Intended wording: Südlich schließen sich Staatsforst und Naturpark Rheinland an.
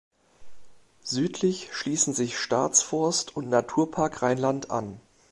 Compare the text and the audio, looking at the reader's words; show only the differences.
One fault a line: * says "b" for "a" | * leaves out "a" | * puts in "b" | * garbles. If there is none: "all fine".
all fine